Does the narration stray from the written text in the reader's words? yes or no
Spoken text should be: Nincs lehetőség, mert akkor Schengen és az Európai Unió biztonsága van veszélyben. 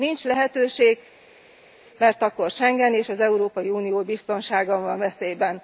no